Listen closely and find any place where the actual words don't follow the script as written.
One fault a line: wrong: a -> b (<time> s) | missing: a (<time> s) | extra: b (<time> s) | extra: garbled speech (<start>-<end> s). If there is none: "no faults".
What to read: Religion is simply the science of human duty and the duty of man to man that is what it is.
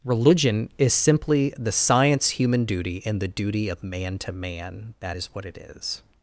missing: of (2.3 s)